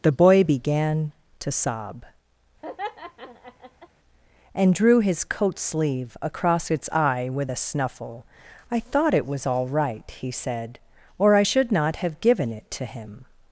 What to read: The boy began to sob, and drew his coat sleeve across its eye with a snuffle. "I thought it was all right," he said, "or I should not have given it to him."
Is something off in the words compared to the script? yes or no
no